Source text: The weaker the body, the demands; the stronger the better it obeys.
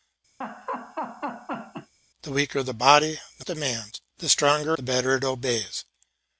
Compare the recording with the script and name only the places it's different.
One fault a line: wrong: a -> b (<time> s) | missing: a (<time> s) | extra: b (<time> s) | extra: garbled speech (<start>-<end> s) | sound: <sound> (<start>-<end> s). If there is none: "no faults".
sound: laugh (0.4-1.9 s)